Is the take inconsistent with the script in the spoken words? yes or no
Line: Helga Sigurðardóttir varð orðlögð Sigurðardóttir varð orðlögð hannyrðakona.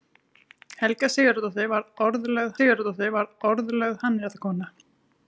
no